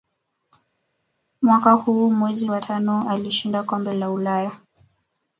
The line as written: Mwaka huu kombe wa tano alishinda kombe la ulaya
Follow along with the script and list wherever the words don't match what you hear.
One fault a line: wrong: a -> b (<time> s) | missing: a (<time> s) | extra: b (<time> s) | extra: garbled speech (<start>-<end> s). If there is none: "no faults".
wrong: kombe -> mwezi (2.1 s)